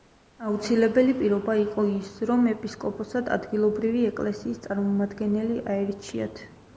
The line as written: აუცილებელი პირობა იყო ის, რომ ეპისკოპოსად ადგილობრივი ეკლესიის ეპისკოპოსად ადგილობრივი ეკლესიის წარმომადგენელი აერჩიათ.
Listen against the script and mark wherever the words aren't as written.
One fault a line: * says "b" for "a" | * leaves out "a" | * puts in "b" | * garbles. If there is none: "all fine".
* leaves out "ეპისკოპოსად ადგილობრივი ეკლესიის"